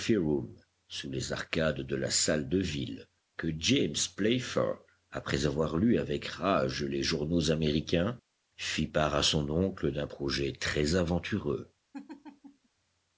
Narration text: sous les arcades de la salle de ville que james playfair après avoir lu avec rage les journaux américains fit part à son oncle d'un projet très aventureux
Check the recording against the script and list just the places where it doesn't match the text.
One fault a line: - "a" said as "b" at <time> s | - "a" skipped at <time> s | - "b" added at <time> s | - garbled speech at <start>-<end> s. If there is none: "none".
none